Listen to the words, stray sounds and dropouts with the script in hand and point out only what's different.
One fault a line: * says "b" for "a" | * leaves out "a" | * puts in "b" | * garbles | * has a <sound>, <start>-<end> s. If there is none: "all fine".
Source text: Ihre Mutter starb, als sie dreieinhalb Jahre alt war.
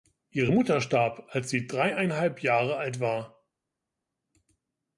all fine